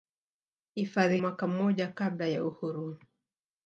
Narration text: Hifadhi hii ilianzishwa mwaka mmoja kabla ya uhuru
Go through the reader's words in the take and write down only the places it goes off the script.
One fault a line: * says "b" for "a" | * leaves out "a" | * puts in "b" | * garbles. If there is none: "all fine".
* leaves out "hii ilianzishwa"